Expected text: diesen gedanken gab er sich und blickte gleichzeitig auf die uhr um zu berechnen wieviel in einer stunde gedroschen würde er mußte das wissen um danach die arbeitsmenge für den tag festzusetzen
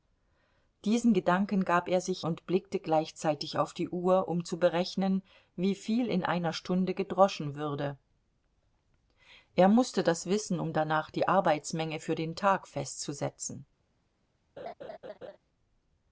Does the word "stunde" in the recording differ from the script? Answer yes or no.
no